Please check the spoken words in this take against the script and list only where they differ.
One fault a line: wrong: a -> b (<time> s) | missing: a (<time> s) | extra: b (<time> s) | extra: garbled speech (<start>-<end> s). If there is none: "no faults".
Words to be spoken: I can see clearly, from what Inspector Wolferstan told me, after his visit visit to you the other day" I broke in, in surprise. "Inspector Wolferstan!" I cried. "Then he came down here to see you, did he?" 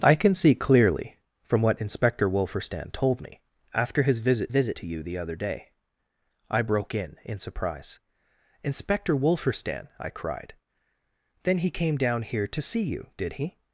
no faults